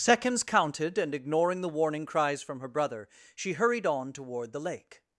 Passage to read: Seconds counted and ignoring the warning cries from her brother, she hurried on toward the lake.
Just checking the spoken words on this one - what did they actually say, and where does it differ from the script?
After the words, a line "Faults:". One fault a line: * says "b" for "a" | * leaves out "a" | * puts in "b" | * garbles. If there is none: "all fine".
Seconds counted and ignoring the warning cries from her brother, she hurried on toward the lake.
Faults:
all fine